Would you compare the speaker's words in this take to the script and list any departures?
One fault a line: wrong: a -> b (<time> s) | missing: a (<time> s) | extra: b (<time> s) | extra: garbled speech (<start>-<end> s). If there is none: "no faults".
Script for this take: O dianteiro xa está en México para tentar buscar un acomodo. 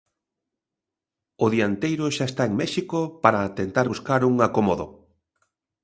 no faults